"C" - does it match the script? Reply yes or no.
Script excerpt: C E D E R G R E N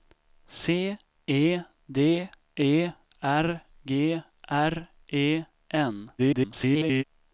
yes